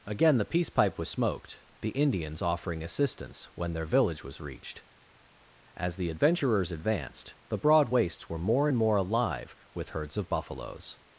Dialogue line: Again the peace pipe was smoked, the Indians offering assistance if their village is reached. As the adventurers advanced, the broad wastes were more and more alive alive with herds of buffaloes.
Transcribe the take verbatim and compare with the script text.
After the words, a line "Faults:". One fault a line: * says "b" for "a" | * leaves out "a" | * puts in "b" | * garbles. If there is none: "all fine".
Again the peace pipe was smoked, the Indians offering assistance when their village was reached. As the adventurers advanced, the broad wastes were more and more alive with herds of buffaloes.
Faults:
* says "when" for "if"
* says "was" for "is"
* leaves out "alive"